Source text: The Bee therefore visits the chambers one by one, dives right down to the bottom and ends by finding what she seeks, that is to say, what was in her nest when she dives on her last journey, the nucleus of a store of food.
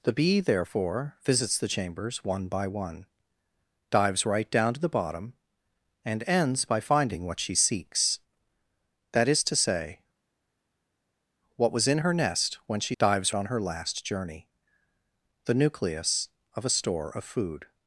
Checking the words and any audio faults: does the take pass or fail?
pass